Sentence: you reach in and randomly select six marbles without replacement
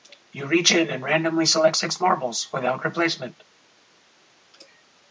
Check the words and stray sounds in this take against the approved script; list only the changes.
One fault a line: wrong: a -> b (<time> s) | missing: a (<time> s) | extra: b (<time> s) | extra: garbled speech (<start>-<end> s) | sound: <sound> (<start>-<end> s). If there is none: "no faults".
no faults